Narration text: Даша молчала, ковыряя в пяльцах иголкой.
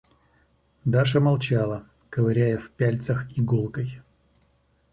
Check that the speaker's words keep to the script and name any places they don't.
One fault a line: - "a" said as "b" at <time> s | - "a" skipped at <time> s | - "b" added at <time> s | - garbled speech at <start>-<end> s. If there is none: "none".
none